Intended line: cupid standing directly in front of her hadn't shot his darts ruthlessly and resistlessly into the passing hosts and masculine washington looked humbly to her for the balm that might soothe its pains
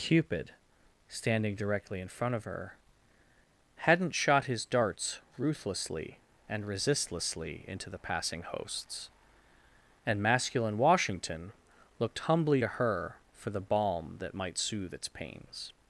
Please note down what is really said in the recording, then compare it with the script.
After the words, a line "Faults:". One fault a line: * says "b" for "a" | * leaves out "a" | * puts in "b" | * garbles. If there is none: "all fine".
cupid standing directly in front of her hadn't shot his darts ruthlessly and resistlessly into the passing hosts and masculine washington looked humbly to her for the balm that might soothe its pains
Faults:
all fine